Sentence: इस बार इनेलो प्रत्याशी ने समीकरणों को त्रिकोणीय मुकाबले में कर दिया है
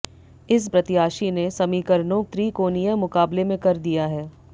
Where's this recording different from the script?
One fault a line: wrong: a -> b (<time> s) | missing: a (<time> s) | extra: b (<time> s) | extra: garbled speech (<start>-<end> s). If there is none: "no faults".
missing: बार इनेलो (0.7 s)
missing: को (2.2 s)